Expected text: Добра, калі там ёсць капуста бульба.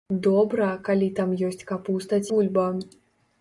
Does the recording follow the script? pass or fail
pass